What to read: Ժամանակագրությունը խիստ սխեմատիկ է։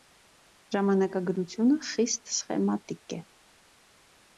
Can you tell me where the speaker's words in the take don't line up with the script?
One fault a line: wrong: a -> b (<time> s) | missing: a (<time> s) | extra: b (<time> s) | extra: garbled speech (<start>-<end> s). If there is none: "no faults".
no faults